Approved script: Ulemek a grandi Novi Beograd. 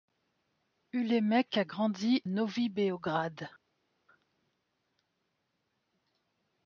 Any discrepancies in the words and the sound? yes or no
no